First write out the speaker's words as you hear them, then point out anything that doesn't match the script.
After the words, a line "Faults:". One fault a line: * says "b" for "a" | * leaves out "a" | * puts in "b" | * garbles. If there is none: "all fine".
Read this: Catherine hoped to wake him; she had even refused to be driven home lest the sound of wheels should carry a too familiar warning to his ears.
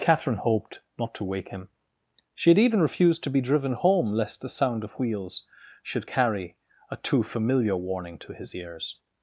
Catherine hoped not to wake him; she had even refused to be driven home lest the sound of wheels should carry a too familiar warning to his ears.
Faults:
* puts in "not"